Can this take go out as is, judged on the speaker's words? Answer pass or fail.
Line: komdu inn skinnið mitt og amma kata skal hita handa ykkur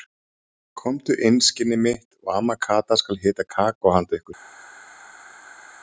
fail